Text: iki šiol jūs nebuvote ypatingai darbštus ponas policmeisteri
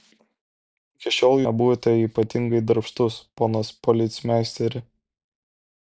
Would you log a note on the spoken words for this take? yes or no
yes